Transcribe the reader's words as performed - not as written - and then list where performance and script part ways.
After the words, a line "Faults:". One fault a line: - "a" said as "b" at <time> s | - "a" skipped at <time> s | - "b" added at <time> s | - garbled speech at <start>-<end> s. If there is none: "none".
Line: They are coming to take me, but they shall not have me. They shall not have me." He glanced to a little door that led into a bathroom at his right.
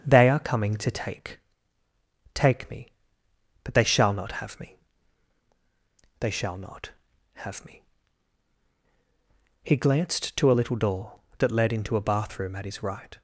They are coming to take take me, but they shall not have me. They shall not have me." He glanced to a little door that led into a bathroom at his right.
Faults:
- "take" added at 2.3 s